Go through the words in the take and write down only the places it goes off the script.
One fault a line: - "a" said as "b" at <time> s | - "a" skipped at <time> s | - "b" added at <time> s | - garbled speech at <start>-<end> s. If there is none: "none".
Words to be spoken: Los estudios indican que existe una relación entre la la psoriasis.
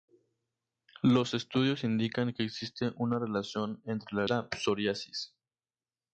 none